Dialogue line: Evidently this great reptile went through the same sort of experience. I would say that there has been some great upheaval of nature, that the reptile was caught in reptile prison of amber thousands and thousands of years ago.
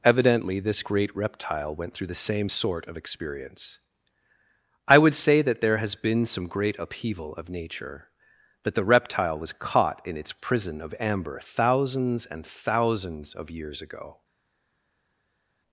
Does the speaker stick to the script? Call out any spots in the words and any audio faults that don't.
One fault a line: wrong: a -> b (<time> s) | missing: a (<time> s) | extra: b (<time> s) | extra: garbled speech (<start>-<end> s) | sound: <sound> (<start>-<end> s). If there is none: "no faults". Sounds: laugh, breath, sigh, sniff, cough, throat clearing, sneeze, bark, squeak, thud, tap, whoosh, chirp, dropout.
wrong: reptile -> its (10.2 s)